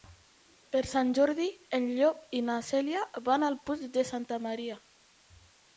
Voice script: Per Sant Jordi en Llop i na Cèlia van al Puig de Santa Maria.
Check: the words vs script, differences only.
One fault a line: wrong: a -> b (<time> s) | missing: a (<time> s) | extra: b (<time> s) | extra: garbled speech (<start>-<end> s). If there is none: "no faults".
no faults